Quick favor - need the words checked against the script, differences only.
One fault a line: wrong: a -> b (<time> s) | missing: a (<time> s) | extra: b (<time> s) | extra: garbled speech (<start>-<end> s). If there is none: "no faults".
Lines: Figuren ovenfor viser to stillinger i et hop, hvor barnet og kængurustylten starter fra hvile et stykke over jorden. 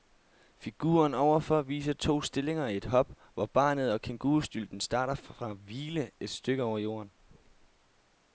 no faults